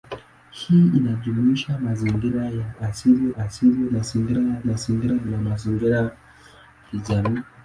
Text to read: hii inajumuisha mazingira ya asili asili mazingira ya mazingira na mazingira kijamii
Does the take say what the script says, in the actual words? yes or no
yes